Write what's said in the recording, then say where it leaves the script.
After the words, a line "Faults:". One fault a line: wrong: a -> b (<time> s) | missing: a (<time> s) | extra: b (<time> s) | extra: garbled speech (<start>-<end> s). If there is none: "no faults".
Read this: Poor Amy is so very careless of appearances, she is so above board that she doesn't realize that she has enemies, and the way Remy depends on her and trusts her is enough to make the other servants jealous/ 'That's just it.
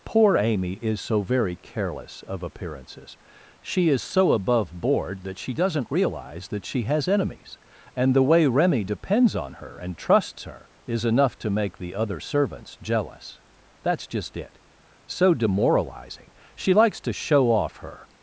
Poor Amy is so very careless of appearances, she is so above board that she doesn't realize that she has enemies, and the way Remy depends on her and trusts her is enough to make the other servants jealous/ 'That's just it. So demoralizing! She likes to show off her
Faults:
extra: So demoralizing She likes to show off her (15.0 s)